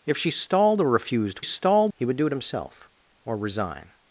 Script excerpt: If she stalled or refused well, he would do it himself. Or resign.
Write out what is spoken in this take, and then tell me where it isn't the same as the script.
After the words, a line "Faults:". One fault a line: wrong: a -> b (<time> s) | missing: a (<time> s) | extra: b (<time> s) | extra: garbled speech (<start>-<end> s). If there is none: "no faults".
If she stalled or refused stalled, he would do it himself. Or resign.
Faults:
wrong: well -> stalled (1.4 s)